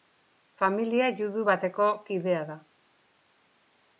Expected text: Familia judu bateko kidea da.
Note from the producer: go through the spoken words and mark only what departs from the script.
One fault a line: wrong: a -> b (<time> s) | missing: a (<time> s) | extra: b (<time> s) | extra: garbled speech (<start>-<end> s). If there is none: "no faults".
no faults